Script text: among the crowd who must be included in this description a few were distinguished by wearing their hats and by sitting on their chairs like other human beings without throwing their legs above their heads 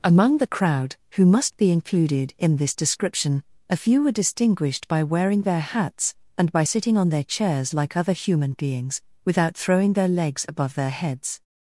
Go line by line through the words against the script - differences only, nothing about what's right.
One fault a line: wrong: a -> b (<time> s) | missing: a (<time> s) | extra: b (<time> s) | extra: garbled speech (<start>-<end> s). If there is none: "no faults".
no faults